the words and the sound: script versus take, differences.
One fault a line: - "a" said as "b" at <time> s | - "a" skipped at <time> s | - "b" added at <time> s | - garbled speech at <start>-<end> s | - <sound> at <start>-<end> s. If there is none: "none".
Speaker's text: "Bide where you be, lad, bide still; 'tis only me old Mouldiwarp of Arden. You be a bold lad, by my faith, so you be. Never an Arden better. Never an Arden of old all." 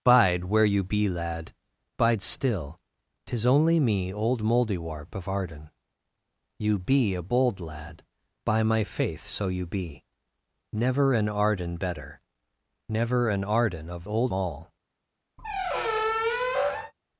- squeak at 15.4-16.9 s